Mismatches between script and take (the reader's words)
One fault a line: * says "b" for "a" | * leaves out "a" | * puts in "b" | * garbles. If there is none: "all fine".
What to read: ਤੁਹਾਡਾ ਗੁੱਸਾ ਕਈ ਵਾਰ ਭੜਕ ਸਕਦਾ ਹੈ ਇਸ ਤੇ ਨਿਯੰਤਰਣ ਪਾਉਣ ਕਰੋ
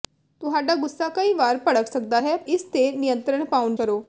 all fine